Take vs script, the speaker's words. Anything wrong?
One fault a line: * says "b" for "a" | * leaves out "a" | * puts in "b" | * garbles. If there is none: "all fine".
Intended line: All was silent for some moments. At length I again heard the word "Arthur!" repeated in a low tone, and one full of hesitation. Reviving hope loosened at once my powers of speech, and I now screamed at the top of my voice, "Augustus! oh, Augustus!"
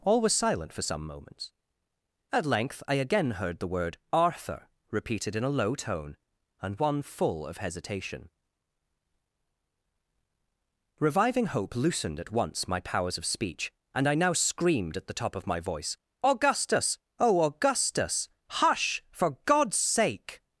* puts in "Hush for God's sake"